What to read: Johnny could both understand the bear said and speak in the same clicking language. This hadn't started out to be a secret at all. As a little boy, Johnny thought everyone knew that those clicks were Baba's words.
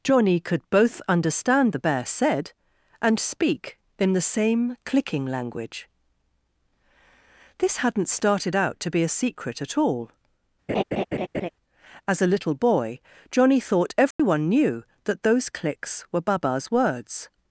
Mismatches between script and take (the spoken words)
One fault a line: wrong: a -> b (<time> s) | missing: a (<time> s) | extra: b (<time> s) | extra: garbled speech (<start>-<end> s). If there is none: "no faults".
no faults